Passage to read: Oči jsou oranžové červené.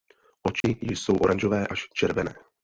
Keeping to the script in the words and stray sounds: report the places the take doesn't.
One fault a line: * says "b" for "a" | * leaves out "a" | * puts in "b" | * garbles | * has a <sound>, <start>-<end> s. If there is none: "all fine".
* has a dropout, 0.6-0.6 s
* puts in "až"